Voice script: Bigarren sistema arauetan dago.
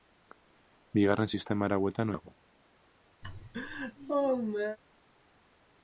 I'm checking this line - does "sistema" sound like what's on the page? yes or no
yes